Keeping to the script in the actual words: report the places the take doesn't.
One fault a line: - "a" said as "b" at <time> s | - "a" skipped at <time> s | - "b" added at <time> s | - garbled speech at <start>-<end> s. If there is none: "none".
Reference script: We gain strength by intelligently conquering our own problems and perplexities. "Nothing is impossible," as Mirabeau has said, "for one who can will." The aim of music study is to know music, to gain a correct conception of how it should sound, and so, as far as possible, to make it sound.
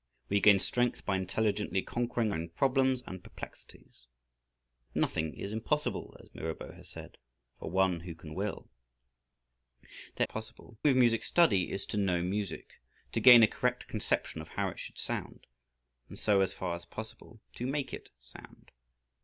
- "our" skipped at 2.3 s
- "aim" said as "possible" at 10.2 s